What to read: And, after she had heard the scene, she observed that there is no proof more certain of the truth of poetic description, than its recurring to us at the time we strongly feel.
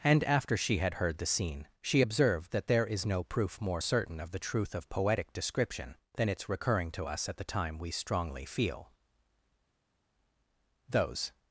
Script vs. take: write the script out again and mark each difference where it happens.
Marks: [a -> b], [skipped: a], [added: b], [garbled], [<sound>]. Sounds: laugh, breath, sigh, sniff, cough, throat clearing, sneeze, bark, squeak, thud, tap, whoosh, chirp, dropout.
And, after she had heard the scene, she observed that there is no proof more certain of the truth of poetic description, than its recurring to us at the time we strongly feel. [added: Those]